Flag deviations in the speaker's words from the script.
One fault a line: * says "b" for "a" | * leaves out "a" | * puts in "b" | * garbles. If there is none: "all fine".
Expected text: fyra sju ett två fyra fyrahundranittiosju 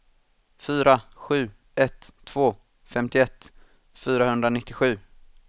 * says "femtioett" for "fyra"